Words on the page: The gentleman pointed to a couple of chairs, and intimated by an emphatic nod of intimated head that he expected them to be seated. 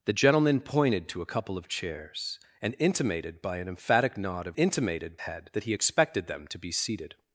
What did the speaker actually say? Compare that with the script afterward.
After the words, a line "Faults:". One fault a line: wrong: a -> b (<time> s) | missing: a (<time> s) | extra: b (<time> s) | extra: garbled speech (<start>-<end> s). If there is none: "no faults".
The gentleman pointed to a couple of chairs, and intimated by an emphatic nod of intimated head that he expected them to be seated.
Faults:
no faults